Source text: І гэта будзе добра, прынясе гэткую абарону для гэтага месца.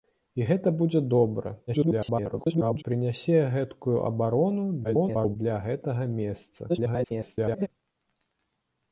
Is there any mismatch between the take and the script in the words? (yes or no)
yes